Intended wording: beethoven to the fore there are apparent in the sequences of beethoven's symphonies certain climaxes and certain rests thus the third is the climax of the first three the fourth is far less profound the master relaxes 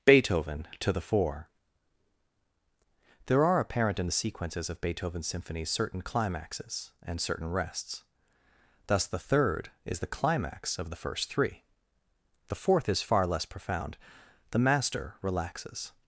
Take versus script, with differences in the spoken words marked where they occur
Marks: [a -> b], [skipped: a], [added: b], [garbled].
beethoven to the fore there are apparent in the sequences of beethoven's symphonies certain climaxes and certain rests thus the third is the climax of the first three the fourth is far less profound the master relaxes